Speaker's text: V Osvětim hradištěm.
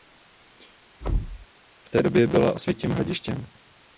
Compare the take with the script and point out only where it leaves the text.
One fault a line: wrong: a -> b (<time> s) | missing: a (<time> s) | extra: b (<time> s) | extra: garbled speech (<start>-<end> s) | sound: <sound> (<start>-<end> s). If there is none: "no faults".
sound: thud (1.0-1.5 s)
extra: té době byla (1.9 s)